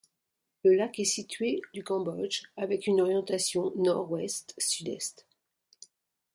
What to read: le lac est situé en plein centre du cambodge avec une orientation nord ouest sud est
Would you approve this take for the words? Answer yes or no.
no